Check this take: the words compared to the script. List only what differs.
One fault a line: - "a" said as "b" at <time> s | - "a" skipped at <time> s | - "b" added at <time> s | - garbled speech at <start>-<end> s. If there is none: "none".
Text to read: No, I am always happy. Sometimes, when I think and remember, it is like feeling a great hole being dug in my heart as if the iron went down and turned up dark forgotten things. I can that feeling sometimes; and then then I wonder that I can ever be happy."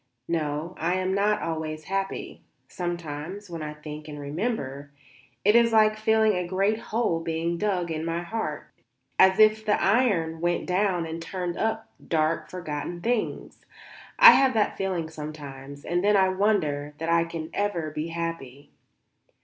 - "not" added at 1.1 s
- "can" said as "have" at 14.3 s
- "then" skipped at 16.2 s